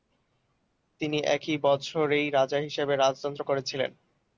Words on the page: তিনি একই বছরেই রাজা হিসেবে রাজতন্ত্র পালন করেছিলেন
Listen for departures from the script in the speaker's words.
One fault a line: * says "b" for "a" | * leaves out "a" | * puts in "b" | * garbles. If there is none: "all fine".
* leaves out "পালন"